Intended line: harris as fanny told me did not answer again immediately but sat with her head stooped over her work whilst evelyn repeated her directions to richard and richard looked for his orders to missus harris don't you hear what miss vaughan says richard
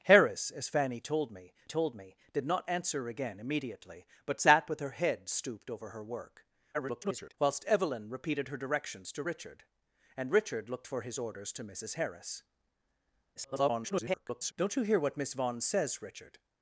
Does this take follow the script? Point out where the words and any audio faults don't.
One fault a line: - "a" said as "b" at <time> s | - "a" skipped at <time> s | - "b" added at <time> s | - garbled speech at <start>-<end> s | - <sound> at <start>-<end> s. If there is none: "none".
- "told me" added at 1.6 s
- garbled speech at 6.7-7.3 s
- garbled speech at 13.4-14.5 s